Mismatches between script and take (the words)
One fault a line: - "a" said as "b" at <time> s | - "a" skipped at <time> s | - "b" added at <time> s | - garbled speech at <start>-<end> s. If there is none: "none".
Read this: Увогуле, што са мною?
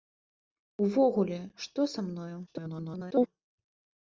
- garbled speech at 2.5-3.3 s